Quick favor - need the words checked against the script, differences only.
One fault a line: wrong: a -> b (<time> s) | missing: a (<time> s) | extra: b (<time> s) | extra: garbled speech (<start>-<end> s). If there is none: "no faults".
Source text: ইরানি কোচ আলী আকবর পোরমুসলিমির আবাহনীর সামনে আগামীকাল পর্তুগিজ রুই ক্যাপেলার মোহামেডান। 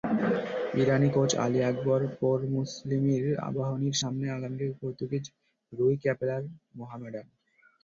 no faults